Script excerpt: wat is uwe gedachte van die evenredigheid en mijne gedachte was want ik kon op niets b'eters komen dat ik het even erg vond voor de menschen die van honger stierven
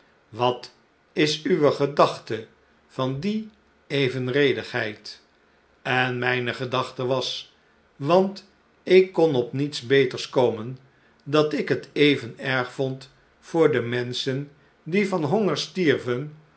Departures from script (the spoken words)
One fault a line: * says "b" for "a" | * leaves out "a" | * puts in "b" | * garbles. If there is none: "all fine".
all fine